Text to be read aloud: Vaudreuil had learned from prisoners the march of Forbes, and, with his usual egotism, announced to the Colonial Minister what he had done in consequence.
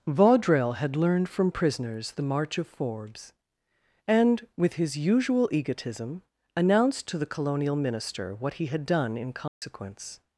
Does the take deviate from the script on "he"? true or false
false